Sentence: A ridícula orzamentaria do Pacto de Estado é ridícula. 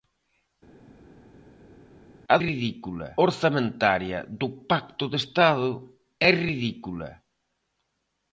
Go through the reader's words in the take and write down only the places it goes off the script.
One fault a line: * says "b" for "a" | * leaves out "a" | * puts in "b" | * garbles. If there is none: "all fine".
all fine